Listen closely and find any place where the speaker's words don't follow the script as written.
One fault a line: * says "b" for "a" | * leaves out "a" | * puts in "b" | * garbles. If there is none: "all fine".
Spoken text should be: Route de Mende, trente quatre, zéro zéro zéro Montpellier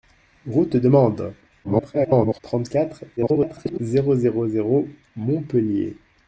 * garbles
* garbles